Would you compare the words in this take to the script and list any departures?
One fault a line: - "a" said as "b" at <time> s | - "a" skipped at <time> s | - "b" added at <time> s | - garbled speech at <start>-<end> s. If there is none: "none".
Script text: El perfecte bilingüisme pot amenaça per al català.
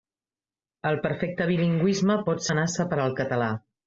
none